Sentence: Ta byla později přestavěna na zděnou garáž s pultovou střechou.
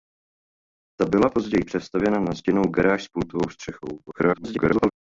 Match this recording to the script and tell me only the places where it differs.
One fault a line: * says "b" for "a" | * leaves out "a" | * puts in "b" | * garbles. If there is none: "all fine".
* garbles